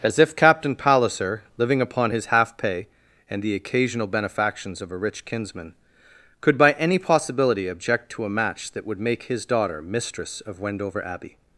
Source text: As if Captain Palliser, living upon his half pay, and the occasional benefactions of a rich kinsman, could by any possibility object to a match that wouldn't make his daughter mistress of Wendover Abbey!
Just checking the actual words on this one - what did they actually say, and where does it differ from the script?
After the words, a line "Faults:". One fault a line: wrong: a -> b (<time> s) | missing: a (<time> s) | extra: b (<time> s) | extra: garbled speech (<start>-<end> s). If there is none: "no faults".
As if Captain Palliser, living upon his half pay, and the occasional benefactions of a rich kinsman, could by any possibility object to a match that would make his daughter mistress of Wendover Abbey!
Faults:
wrong: wouldn't -> would (8.9 s)